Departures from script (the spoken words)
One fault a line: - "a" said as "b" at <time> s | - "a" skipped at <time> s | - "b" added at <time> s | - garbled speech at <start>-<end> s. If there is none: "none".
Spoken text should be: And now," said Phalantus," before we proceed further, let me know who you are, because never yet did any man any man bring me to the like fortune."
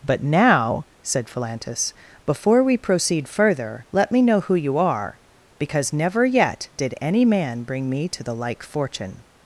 - "And" said as "But" at 0.0 s
- "any man" skipped at 7.6 s